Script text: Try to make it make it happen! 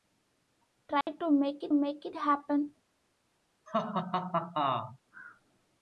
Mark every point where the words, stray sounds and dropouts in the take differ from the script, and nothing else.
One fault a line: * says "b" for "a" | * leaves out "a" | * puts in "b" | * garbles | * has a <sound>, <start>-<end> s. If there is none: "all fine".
* has a dropout, 1.0-1.1 s
* has a laugh, 3.7-5.0 s